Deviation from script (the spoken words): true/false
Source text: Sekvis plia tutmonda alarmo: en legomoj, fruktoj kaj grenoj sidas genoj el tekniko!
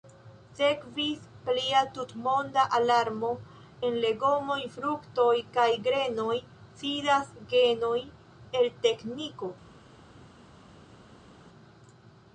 false